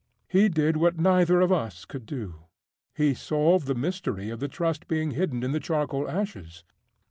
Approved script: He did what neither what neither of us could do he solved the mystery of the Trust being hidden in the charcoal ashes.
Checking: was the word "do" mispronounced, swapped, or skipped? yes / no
no